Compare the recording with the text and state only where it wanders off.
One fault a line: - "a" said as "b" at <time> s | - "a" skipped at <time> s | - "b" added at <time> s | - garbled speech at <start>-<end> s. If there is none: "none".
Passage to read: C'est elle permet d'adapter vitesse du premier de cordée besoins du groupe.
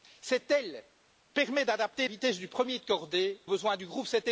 none